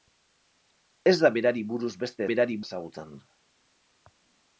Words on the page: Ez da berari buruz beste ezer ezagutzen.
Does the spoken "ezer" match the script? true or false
false